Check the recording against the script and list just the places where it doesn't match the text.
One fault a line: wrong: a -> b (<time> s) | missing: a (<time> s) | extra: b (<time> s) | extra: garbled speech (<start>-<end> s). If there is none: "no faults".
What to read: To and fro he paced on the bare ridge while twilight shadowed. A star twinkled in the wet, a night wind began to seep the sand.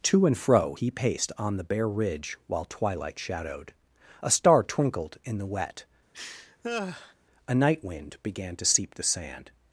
no faults